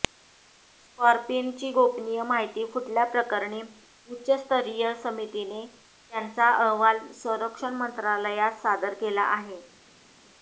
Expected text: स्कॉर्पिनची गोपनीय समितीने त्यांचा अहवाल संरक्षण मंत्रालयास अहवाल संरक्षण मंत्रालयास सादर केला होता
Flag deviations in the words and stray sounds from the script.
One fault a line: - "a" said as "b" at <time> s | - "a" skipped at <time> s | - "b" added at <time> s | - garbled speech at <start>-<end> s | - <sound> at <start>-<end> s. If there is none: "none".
- "समितीने त्यांचा अहवाल संरक्षण मंत्रालयास" said as "माहिती फुटल्याप्रकरणी उच्चस्तरीय समितीने त्यांचा" at 2.2 s
- "होता" said as "आहे" at 9.3 s